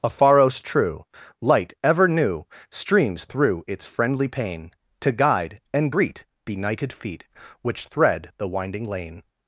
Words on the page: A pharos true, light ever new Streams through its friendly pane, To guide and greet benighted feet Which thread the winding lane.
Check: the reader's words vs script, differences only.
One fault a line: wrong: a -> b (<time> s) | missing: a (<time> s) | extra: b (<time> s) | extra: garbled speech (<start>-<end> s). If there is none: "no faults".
no faults